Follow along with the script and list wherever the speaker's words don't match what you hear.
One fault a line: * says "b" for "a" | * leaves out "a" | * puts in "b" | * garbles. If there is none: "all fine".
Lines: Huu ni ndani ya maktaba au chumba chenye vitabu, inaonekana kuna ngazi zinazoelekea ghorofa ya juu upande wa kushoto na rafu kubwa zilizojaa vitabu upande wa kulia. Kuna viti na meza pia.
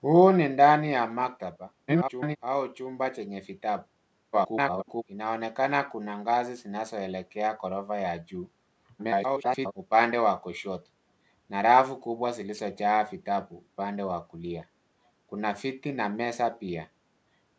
* garbles
* garbles
* garbles